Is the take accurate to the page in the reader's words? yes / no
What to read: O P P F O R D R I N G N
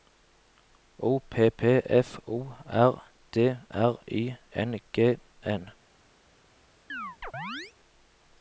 yes